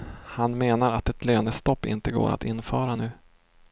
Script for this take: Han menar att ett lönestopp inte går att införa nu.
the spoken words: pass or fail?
pass